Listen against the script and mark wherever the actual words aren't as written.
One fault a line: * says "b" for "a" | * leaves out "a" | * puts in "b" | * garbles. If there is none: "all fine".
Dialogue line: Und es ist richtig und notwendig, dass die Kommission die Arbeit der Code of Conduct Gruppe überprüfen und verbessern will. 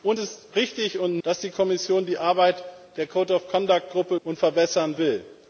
* leaves out "es"
* leaves out "notwendig"
* leaves out "überprüfen"